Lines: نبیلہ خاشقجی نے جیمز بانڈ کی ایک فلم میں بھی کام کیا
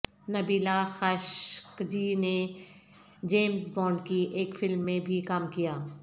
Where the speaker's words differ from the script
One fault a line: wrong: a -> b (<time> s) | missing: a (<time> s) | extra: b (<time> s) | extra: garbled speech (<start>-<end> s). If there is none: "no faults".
no faults